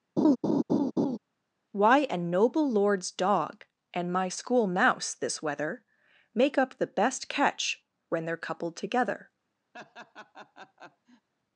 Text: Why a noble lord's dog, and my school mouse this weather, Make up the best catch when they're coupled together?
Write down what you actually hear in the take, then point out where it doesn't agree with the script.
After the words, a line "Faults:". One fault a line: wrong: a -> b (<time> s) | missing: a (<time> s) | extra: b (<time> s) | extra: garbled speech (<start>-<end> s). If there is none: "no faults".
Why a noble lord's dog, and my school mouse this weather, Make up the best catch when they're coupled together?
Faults:
no faults